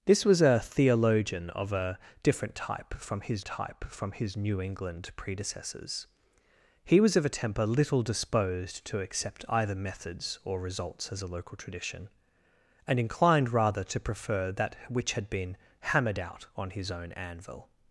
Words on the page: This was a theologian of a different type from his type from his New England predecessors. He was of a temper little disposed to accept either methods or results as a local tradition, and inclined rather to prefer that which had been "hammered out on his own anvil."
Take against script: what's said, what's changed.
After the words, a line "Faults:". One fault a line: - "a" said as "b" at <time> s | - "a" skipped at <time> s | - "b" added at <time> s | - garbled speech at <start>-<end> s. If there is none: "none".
This was a theologian of a different type from his type from his New England predecessors. He was of a temper little disposed to accept either methods or results as a local tradition, and inclined rather to prefer that which had been "hammered out on his own anvil."
Faults:
none